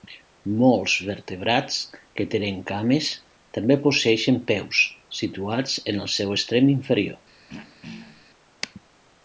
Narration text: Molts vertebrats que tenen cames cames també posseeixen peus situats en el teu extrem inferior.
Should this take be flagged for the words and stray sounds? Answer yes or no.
yes